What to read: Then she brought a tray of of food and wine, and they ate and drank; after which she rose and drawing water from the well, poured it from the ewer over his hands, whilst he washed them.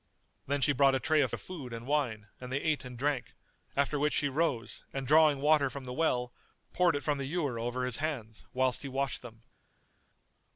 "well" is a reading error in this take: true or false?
false